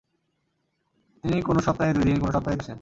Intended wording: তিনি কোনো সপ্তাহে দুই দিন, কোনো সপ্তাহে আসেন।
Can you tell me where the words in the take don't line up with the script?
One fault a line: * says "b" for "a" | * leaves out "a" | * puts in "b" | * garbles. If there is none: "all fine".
all fine